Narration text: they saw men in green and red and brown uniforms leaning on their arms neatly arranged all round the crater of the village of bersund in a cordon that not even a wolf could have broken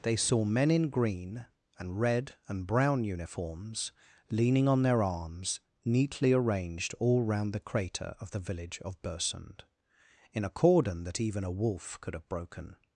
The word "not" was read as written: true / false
false